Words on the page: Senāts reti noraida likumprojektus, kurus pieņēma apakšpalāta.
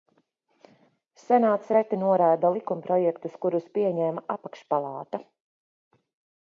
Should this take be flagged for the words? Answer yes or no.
no